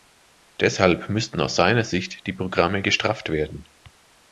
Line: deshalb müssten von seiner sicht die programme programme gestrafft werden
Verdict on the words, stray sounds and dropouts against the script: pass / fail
fail